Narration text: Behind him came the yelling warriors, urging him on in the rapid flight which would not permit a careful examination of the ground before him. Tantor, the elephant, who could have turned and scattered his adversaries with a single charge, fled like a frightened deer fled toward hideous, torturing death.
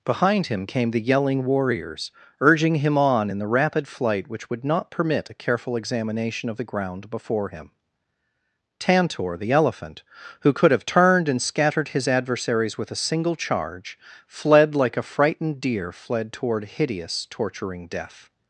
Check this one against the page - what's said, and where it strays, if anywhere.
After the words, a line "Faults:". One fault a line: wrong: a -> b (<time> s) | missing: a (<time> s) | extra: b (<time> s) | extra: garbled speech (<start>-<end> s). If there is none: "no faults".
Behind him came the yelling warriors, urging him on in the rapid flight which would not permit a careful examination of the ground before him. Tantor, the elephant, who could have turned and scattered his adversaries with a single charge, fled like a frightened deer fled toward hideous, torturing death.
Faults:
no faults